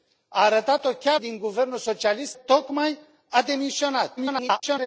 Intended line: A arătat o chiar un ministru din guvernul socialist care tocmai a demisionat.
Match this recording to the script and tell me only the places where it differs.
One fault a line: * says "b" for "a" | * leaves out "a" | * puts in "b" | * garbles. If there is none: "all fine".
* leaves out "un ministru"
* leaves out "care"
* garbles